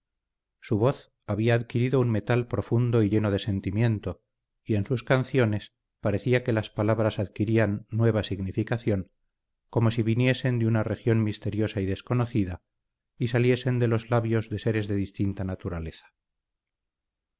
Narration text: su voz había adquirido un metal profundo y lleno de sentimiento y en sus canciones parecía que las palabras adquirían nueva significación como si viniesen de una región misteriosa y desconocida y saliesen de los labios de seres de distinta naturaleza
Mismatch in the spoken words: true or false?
false